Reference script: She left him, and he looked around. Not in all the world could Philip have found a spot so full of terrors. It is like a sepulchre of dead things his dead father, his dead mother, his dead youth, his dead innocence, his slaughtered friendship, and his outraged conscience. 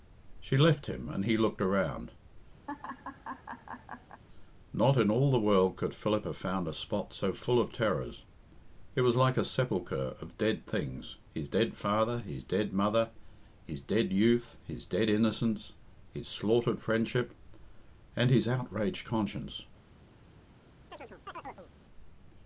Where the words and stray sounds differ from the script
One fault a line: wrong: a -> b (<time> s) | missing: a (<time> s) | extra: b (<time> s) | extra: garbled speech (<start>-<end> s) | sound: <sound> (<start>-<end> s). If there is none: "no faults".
sound: laugh (2.7-4.2 s)
wrong: is -> was (9.0 s)
sound: chirp (20.9-21.7 s)